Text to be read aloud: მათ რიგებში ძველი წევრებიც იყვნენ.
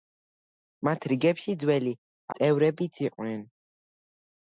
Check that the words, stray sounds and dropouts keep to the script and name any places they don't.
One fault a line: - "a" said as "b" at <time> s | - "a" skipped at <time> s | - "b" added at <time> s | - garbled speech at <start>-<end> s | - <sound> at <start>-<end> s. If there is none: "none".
none